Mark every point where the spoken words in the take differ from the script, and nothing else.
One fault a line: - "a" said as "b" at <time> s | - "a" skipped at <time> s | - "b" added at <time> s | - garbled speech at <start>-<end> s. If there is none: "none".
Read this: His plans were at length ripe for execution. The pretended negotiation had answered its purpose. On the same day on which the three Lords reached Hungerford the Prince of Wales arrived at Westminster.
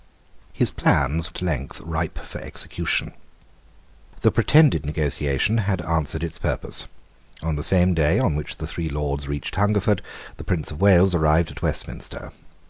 - "were" skipped at 1.3 s